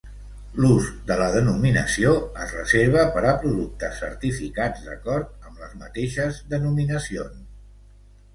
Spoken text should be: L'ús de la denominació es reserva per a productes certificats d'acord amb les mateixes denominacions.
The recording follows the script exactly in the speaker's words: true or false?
true